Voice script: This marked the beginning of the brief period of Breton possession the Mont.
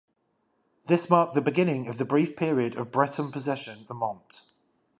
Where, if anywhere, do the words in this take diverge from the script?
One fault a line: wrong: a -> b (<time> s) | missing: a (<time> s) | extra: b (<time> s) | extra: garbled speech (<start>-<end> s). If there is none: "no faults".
no faults